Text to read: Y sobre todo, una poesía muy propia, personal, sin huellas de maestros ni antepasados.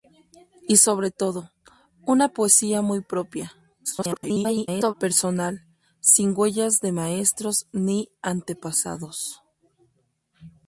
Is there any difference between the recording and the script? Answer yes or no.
yes